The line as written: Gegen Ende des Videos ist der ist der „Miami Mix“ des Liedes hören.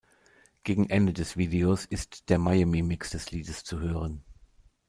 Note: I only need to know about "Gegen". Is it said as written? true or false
true